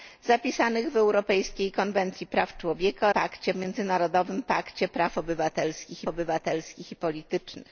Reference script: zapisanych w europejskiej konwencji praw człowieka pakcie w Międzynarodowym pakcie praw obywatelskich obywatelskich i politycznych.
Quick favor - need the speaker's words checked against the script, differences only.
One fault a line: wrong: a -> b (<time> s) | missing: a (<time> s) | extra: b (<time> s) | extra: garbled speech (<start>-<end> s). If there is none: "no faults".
no faults